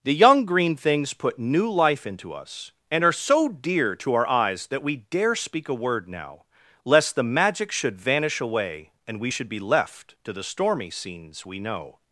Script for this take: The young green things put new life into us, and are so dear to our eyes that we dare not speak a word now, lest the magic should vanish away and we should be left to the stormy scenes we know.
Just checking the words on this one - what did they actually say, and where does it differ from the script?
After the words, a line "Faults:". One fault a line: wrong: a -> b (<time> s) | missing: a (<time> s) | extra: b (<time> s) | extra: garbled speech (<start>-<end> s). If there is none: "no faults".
The young green things put new life into us, and are so dear to our eyes that we dare speak a word now, lest the magic should vanish away and we should be left to the stormy scenes we know.
Faults:
missing: not (5.3 s)